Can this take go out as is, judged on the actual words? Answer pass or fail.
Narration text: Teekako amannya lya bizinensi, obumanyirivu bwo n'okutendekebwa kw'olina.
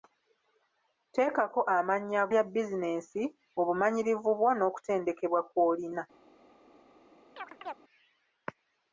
pass